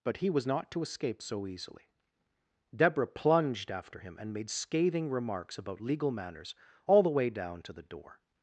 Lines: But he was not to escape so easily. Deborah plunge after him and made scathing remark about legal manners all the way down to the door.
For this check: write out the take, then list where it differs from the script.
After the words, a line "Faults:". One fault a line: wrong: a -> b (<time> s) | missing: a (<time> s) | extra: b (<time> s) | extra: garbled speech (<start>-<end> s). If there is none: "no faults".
But he was not to escape so easily. Deborah plunged after him and made scathing remarks about legal manners all the way down to the door.
Faults:
wrong: plunge -> plunged (3.1 s)
wrong: remark -> remarks (5.1 s)